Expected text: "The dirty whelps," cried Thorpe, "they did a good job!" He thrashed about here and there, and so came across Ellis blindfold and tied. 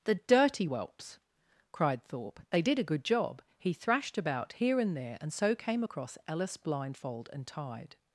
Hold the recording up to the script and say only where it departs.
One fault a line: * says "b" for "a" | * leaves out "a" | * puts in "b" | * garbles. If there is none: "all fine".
all fine